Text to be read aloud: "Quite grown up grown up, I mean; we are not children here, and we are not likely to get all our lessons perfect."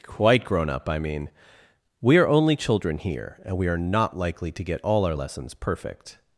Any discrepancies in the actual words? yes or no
yes